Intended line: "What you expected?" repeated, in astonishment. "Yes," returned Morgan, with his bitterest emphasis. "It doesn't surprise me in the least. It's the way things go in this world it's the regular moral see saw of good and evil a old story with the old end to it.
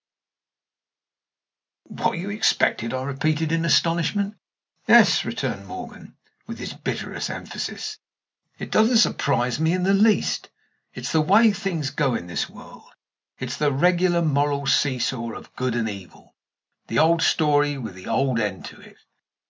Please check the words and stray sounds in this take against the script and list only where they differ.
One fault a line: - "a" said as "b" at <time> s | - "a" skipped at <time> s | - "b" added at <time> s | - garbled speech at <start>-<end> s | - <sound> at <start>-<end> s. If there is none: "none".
- "I" added at 2.9 s
- "a" said as "the" at 16.9 s